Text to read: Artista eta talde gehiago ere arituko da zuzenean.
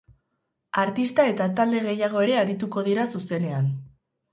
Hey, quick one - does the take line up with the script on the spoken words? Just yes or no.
no